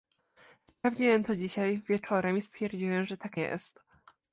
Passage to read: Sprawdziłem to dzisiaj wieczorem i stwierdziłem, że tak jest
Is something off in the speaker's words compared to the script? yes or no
no